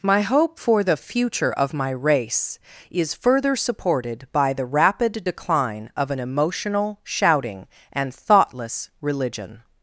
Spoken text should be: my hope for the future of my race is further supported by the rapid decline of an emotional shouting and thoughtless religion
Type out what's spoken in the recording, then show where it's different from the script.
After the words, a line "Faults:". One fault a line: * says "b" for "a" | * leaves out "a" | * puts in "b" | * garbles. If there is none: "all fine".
my hope for the future of my race is further supported by the rapid decline of an emotional shouting and thoughtless religion
Faults:
all fine